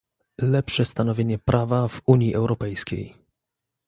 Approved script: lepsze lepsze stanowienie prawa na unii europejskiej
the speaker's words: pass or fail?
fail